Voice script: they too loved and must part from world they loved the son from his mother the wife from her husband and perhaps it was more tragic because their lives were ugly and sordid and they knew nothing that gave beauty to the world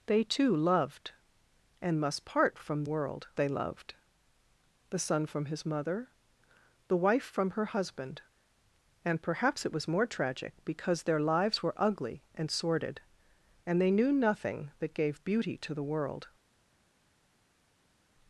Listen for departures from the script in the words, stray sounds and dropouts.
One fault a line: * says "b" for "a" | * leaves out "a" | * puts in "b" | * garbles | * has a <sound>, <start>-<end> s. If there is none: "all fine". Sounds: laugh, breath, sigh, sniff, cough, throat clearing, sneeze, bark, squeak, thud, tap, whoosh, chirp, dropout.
all fine